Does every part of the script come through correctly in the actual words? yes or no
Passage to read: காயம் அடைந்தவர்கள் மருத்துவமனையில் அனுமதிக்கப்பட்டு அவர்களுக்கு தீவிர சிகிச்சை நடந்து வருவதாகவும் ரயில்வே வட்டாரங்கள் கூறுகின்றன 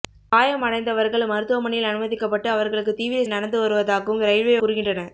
no